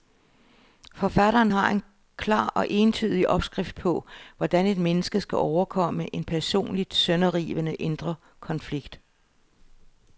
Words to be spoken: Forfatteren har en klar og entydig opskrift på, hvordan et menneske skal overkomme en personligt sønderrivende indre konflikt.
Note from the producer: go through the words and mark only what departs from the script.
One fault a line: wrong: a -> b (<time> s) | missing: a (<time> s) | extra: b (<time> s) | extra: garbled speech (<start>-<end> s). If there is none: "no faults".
no faults